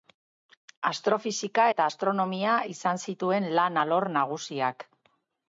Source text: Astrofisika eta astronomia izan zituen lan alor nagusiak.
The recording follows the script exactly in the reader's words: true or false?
true